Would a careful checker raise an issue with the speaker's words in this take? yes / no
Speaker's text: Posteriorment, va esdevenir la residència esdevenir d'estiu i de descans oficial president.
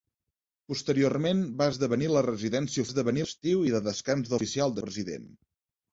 no